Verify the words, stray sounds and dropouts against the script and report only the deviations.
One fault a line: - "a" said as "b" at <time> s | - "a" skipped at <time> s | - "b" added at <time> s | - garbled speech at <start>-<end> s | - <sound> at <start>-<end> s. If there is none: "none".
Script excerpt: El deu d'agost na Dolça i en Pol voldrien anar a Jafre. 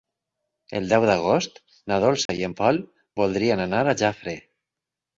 - dropout at 2.3-2.3 s